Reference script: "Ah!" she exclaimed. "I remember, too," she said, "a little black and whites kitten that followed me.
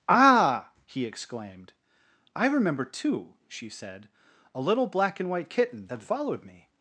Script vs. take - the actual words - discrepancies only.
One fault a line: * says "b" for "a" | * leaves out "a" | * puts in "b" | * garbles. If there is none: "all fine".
* says "he" for "she"
* says "white" for "whites"